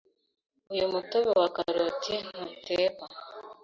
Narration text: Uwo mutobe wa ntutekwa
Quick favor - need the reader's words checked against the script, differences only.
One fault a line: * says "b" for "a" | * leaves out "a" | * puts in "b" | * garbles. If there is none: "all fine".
* says "Uyu" for "Uwo"
* puts in "karoti"